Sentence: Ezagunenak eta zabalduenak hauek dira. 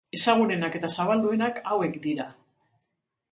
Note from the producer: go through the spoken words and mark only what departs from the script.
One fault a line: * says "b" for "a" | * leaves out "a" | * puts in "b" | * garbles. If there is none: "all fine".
all fine